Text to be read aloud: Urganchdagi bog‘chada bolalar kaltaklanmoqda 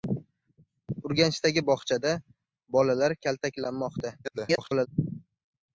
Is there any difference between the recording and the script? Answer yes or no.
yes